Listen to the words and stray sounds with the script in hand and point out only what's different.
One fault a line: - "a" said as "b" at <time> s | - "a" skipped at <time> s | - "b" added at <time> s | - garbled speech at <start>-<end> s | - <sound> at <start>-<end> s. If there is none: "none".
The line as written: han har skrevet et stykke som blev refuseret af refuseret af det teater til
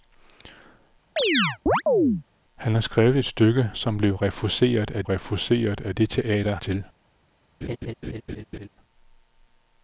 - chirp at 1.2-2.2 s
- laugh at 7.6-8.7 s